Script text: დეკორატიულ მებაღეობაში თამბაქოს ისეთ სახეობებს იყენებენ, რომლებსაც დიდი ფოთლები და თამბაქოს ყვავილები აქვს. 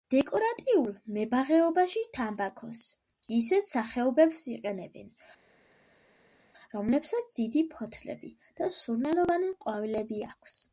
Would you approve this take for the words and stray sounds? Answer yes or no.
no